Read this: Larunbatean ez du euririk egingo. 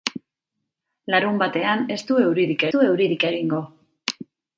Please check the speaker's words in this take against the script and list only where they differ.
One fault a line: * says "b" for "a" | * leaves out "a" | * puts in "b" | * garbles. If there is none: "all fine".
* puts in "du euririk"